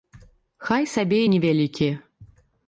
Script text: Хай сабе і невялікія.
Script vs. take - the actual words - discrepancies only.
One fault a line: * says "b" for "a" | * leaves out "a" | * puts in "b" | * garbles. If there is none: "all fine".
all fine